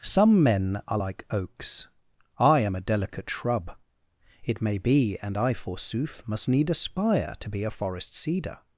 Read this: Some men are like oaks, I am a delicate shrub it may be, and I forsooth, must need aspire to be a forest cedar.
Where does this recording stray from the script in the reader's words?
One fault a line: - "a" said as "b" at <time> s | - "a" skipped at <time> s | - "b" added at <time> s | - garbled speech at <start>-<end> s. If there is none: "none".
none